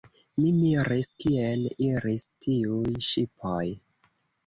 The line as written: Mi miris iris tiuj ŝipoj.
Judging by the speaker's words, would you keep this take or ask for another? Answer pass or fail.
fail